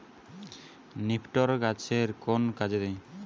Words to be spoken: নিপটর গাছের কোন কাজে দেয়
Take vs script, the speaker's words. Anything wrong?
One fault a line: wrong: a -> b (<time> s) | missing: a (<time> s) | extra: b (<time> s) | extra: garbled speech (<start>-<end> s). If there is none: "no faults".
no faults